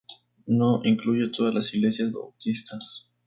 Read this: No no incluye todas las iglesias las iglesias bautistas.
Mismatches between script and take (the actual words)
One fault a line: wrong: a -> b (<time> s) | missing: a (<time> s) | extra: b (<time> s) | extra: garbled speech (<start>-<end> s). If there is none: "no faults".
missing: no (0.8 s)
missing: las iglesias (2.1 s)